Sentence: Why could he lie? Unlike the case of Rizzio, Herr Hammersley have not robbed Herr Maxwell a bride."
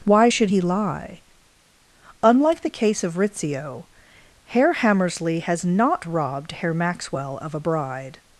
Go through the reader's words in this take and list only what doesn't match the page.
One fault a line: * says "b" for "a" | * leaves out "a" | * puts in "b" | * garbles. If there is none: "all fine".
* says "should" for "could"
* says "has" for "have"
* puts in "of"